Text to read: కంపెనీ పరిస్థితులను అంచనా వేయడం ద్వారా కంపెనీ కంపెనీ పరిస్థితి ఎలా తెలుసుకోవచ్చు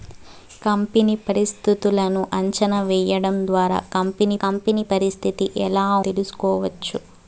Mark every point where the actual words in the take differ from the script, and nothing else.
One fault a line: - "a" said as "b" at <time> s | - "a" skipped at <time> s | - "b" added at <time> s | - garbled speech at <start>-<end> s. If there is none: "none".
none